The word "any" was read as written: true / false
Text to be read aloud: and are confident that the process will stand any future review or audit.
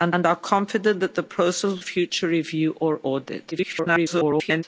false